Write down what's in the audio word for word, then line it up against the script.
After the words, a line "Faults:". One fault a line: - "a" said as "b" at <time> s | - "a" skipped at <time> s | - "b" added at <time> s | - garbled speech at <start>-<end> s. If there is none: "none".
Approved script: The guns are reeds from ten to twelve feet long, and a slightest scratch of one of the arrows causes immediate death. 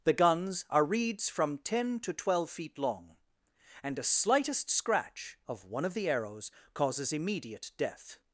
The guns are reeds from ten to twelve feet long, and a slightest scratch of one of the arrows causes immediate death.
Faults:
none